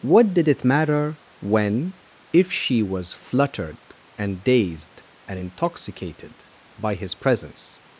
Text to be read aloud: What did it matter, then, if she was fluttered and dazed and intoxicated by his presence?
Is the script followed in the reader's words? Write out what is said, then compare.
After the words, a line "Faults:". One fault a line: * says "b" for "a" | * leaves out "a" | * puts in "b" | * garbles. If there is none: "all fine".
What did it matter, when, if she was fluttered and dazed and intoxicated by his presence?
Faults:
* says "when" for "then"